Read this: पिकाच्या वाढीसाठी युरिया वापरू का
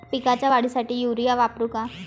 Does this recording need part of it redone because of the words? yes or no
no